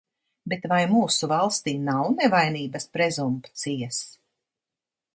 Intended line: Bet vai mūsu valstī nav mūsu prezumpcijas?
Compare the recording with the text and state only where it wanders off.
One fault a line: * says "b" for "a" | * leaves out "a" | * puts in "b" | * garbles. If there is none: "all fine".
* says "nevainības" for "mūsu"